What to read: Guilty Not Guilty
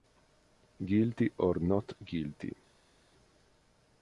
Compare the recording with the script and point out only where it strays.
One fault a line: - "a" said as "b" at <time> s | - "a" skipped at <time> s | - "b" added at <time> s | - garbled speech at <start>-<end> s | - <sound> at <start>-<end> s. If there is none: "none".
- "or" added at 1.4 s